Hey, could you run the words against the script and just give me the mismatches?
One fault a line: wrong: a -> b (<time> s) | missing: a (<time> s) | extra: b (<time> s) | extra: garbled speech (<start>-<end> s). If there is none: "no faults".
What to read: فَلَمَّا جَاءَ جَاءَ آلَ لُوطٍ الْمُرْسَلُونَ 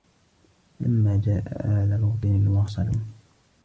missing: جَاءَ (1.4 s)